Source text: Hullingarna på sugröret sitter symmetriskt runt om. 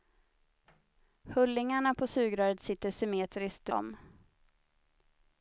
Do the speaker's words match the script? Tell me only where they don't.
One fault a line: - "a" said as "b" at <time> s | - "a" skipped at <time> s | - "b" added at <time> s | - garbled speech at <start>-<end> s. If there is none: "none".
- "runt" skipped at 3.7 s